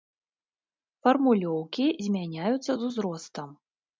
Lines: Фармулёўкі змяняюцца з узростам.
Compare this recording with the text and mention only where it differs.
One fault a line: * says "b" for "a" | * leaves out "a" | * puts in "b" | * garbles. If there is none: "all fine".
all fine